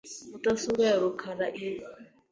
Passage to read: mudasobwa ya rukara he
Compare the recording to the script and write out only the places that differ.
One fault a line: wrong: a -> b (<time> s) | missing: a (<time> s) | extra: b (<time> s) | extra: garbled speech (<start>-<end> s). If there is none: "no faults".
no faults